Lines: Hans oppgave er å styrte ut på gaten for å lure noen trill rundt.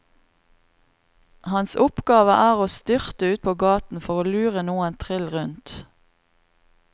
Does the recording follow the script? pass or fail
pass